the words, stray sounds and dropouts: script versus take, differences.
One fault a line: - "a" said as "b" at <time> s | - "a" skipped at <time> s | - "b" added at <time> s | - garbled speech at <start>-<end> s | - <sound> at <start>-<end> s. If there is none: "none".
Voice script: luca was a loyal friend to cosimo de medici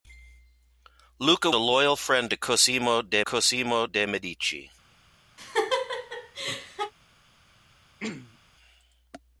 - "was" skipped at 1.5 s
- "cosimo de" added at 3.2 s
- laugh at 5.4-6.9 s
- throat clearing at 8.0-8.4 s